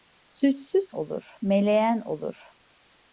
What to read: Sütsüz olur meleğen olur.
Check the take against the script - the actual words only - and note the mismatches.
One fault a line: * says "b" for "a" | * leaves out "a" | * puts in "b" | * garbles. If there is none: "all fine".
all fine